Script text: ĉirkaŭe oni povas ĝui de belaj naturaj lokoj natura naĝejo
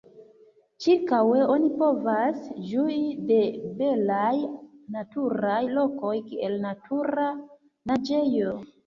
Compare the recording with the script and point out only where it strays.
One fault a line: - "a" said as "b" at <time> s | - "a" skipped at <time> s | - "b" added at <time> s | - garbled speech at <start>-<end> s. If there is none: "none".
- "kiel" added at 6.3 s